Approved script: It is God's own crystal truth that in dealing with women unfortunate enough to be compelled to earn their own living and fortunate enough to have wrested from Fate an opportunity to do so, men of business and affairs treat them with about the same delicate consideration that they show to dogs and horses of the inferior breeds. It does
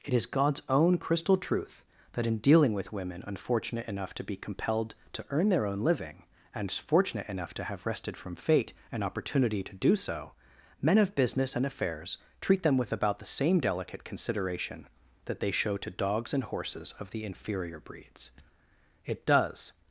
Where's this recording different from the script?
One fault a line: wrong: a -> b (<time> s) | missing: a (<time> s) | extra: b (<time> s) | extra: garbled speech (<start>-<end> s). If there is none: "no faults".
no faults